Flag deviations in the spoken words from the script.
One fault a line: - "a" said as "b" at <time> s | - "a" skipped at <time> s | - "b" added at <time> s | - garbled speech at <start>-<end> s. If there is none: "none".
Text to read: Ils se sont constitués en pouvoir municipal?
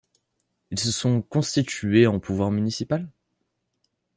none